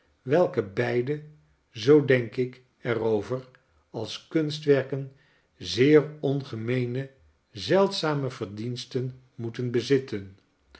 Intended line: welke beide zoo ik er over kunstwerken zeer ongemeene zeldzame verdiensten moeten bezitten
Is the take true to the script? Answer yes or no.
no